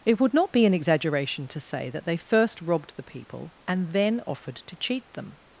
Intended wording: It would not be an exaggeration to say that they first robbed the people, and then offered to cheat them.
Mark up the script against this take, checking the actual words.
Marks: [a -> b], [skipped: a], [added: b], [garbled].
It would not be an exaggeration to say that they first robbed the people, and then offered to cheat them.